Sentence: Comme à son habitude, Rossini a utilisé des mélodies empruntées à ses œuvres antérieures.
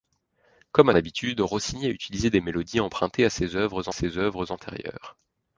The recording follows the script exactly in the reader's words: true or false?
false